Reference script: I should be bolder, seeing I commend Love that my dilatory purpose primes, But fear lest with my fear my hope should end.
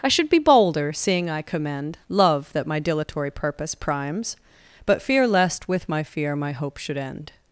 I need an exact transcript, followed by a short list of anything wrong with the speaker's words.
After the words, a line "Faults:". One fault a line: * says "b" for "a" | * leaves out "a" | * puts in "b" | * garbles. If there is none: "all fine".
I should be bolder, seeing I commend Love that my dilatory purpose primes, But fear lest with my fear my hope should end.
Faults:
all fine